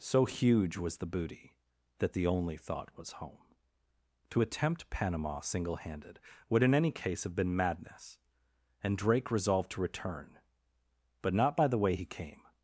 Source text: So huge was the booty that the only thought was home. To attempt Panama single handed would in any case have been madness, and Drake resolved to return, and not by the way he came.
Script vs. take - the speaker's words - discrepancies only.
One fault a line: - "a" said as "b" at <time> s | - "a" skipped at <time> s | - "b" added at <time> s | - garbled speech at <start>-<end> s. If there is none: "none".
- "and" said as "but" at 11.2 s